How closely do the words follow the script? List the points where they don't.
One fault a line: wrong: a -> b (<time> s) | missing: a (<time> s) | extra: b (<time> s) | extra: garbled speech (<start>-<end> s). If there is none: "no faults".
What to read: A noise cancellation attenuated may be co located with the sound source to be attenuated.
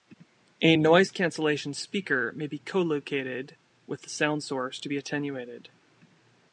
wrong: attenuated -> speaker (1.7 s)